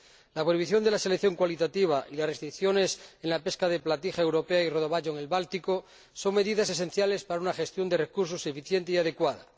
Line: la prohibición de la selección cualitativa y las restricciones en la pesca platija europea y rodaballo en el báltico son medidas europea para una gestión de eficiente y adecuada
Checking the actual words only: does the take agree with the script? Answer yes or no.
no